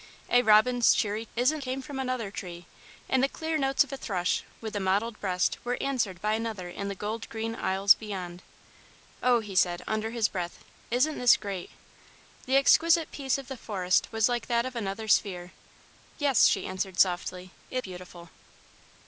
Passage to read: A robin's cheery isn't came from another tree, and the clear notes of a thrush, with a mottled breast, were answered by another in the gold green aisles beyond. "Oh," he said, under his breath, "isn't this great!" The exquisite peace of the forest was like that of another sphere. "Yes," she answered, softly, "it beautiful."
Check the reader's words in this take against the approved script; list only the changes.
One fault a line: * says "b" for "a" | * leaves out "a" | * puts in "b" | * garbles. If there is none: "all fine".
all fine